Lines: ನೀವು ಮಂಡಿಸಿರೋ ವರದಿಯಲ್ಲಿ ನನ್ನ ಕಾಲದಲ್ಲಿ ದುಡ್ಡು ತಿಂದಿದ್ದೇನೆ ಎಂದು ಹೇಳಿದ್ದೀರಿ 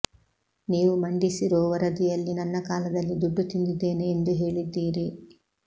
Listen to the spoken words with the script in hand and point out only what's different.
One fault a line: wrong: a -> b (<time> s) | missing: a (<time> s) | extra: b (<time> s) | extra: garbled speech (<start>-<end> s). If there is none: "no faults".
no faults